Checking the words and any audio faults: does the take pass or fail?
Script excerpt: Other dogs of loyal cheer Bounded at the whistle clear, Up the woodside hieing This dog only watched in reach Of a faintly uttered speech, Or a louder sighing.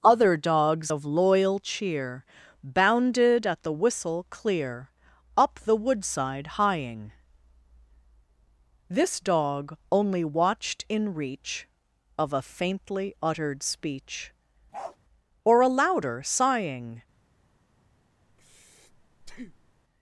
fail